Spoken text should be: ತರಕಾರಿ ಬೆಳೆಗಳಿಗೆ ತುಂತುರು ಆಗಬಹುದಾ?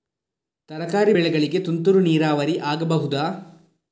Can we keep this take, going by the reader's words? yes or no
no